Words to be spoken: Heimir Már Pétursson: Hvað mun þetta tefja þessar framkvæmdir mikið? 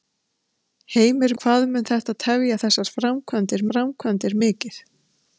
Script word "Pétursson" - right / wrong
wrong